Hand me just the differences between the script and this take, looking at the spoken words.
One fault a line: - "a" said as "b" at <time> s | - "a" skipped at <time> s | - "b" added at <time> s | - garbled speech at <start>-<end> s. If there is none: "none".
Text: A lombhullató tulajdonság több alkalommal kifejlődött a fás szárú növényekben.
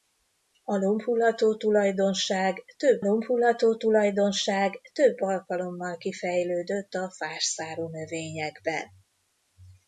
- "lombhullató tulajdonság több" added at 3.0 s